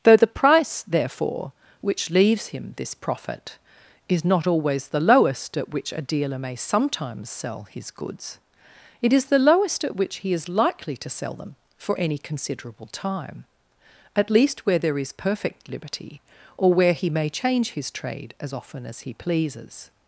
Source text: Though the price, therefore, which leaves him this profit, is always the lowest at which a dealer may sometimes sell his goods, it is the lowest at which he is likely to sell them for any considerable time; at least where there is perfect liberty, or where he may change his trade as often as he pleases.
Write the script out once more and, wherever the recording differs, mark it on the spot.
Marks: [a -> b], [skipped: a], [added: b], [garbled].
Though the price, therefore, which leaves him this profit, is [added: not] always the lowest at which a dealer may sometimes sell his goods, it is the lowest at which he is likely to sell them for any considerable time; at least where there is perfect liberty, or where he may change his trade as often as he pleases.